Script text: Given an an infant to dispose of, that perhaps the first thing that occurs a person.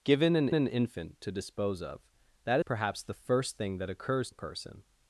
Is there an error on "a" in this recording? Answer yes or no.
no